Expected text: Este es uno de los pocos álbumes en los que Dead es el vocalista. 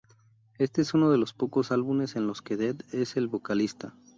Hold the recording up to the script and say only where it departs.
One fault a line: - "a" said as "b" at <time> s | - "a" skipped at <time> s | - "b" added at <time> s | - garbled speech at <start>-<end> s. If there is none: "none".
none